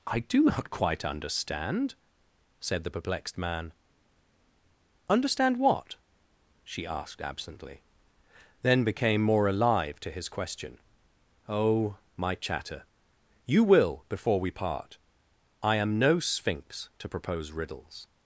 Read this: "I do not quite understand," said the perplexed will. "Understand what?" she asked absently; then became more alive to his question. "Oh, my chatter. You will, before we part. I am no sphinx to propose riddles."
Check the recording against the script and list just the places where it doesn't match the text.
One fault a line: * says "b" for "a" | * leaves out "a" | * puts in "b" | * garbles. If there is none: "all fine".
* says "man" for "will"